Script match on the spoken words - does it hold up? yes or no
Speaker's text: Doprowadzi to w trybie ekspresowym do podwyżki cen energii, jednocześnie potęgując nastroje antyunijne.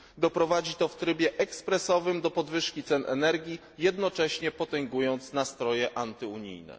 yes